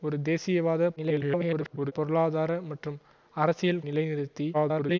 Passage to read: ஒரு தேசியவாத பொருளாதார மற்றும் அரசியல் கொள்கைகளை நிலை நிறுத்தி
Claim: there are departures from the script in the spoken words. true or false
true